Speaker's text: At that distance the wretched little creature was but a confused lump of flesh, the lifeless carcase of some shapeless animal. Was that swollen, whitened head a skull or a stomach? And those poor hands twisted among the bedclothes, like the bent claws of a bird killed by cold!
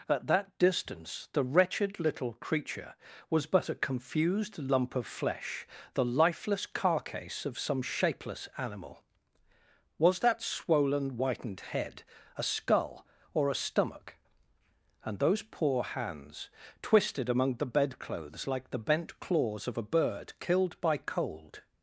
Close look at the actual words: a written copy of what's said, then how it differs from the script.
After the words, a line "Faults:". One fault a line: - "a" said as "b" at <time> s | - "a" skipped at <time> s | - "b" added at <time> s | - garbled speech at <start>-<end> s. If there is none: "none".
At that distance the wretched little creature was but a confused lump of flesh, the lifeless carcase of some shapeless animal. Was that swollen, whitened head a skull or a stomach? And those poor hands twisted among the bedclothes, like the bent claws of a bird killed by cold!
Faults:
none